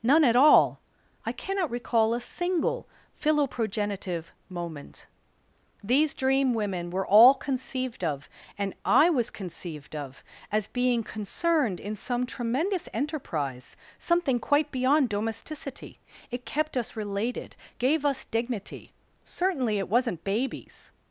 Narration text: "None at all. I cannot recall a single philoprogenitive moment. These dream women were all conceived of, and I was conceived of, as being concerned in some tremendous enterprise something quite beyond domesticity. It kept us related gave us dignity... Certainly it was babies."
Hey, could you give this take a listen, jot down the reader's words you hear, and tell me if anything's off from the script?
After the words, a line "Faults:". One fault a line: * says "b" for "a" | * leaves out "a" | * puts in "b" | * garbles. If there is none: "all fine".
"None at all. I cannot recall a single philoprogenitive moment. These dream women were all conceived of, and I was conceived of, as being concerned in some tremendous enterprise something quite beyond domesticity. It kept us related gave us dignity... Certainly it wasn't babies."
Faults:
* says "wasn't" for "was"